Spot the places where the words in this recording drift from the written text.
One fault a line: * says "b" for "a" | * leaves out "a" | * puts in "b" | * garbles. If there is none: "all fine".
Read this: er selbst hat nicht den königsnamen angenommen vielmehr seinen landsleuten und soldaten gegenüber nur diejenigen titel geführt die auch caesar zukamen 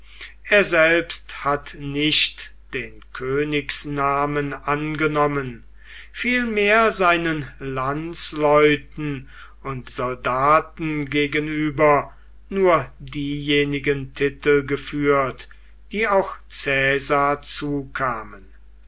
all fine